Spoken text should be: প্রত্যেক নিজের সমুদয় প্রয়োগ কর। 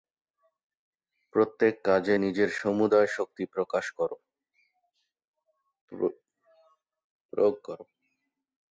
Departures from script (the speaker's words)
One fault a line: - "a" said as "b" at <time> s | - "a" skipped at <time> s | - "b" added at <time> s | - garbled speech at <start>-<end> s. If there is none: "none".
- "কাজে" added at 1.8 s
- "শক্তি" added at 3.1 s